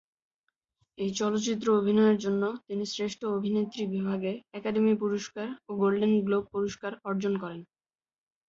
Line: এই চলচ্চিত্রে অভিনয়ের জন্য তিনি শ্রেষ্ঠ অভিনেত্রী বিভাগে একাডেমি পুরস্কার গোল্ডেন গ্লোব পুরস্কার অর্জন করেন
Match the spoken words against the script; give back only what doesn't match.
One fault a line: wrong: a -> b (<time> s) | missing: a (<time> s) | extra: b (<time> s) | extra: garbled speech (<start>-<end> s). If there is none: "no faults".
extra: ও (5.7 s)